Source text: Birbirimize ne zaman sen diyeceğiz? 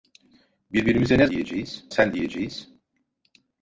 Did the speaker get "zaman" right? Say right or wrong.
wrong